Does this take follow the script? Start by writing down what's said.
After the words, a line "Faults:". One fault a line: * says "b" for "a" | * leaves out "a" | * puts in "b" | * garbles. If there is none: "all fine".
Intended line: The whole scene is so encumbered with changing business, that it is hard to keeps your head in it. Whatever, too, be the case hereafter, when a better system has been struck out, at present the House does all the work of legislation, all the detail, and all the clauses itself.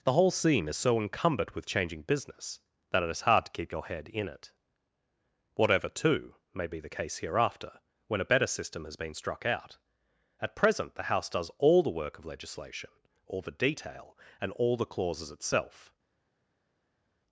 The whole scene is so encumbered with changing business, that it is hard to keep your head in it. Whatever, too, may be the case hereafter, when a better system has been struck out, at present the House does all the work of legislation, all the detail, and all the clauses itself.
Faults:
* says "keep" for "keeps"
* puts in "may"